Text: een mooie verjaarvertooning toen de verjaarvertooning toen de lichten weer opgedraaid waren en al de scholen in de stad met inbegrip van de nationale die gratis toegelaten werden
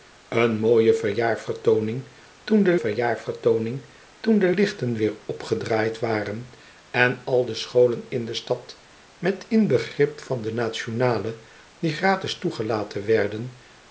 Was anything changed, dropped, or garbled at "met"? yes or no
no